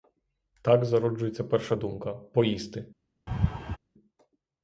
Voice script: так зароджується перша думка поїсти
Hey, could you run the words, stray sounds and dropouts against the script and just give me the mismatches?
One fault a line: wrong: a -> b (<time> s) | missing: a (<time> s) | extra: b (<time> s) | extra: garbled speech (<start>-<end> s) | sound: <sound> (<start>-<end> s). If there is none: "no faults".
sound: laugh (3.3-3.8 s)